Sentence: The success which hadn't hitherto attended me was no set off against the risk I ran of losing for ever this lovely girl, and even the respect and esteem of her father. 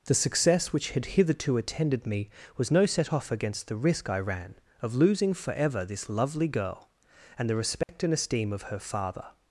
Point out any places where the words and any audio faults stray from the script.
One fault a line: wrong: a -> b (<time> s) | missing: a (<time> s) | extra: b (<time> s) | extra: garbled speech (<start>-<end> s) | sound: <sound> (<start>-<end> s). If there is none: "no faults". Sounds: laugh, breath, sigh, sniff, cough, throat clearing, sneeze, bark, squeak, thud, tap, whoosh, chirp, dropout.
wrong: hadn't -> had (0.9 s)
missing: even (7.5 s)
sound: dropout (7.8-7.9 s)